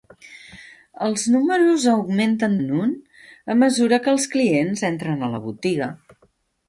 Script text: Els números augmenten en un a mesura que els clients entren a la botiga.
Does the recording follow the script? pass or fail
pass